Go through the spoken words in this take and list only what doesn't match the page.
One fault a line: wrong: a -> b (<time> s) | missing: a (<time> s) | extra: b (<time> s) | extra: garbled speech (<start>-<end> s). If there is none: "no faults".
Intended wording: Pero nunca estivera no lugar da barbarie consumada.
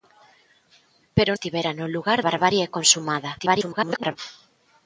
missing: nunca (1.3 s)
missing: da (2.2 s)
extra: garbled speech (3.4-4.2 s)